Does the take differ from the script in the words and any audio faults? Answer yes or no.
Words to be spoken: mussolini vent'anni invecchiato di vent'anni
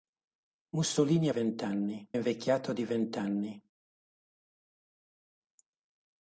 no